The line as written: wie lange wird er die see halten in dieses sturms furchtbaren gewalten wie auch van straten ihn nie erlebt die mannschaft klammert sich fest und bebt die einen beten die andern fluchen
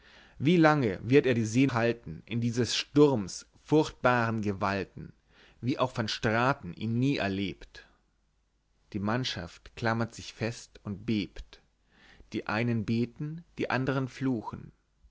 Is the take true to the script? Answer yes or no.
yes